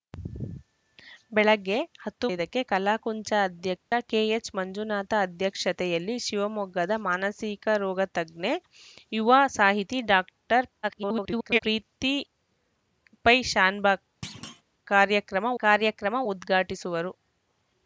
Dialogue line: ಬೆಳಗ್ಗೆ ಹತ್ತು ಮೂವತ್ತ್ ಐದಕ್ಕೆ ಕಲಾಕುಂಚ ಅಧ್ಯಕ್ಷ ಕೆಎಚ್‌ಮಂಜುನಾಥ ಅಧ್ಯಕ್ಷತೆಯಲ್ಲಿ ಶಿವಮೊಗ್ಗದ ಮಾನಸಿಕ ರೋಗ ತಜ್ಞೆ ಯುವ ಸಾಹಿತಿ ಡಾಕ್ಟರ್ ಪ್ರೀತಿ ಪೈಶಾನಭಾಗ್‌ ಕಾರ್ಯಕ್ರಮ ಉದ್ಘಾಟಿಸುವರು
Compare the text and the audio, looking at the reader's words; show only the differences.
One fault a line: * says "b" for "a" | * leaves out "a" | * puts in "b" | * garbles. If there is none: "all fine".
* leaves out "ಮೂವತ್ತ್"
* garbles
* puts in "ಕಾರ್ಯಕ್ರಮ"